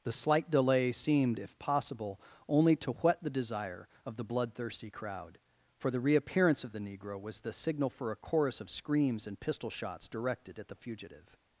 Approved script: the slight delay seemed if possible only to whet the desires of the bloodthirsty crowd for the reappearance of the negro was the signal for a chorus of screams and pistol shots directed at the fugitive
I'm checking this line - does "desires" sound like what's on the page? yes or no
no